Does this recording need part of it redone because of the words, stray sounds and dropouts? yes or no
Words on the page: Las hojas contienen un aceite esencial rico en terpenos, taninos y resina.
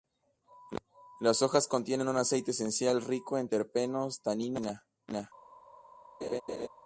yes